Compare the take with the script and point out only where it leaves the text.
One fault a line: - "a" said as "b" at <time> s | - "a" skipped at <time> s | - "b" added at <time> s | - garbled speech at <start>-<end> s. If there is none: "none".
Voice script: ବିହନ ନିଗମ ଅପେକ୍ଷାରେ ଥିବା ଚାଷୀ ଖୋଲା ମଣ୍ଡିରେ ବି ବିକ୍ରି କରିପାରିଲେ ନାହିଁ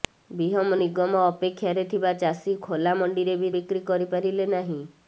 none